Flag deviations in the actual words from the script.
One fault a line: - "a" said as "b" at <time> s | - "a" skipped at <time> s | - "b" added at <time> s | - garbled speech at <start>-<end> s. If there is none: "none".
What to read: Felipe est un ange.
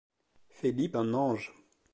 - "est" skipped at 1.0 s